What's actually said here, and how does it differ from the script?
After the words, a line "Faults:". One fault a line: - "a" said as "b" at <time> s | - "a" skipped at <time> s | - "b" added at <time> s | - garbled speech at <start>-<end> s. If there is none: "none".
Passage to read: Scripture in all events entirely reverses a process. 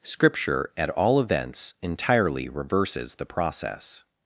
Scripture at all events entirely reverses the process.
Faults:
- "in" said as "at" at 0.8 s
- "a" said as "the" at 3.1 s